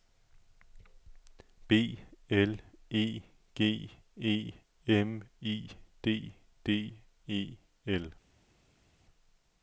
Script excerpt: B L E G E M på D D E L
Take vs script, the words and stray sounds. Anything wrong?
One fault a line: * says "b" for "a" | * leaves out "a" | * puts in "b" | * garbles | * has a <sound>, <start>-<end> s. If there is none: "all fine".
* says "I" for "på"